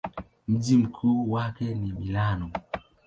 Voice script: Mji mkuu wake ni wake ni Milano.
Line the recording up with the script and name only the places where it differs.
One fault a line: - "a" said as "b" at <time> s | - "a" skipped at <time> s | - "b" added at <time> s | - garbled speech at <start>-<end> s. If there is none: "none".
- "wake ni" skipped at 1.9 s